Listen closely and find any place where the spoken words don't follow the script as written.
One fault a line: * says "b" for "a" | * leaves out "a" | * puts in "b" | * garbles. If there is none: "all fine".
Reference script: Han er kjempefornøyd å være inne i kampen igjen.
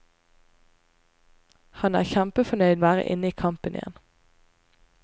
all fine